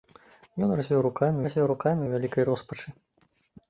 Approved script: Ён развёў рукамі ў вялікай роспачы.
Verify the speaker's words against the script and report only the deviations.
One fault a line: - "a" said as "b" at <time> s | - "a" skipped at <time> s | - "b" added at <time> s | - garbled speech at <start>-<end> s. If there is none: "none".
- "развёў рукамі" added at 1.5 s